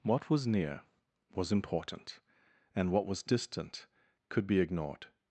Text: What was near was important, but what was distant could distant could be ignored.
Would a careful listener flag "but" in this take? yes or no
yes